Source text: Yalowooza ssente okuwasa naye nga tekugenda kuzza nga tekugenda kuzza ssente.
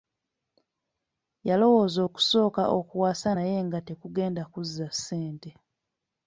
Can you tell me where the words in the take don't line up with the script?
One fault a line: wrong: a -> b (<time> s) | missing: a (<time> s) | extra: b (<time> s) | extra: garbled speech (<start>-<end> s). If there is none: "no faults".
wrong: ssente -> okusooka (2.1 s)
missing: nga tekugenda kuzza (4.9 s)